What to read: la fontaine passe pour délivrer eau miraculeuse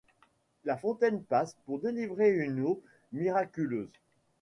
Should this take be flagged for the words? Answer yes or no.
yes